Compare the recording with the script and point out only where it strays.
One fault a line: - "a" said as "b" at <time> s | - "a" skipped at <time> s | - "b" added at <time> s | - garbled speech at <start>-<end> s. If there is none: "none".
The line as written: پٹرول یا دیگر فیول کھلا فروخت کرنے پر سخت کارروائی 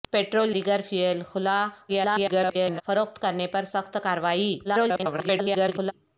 - "یا" skipped at 0.5 s
- garbled speech at 1.9-2.8 s
- garbled speech at 4.6-5.9 s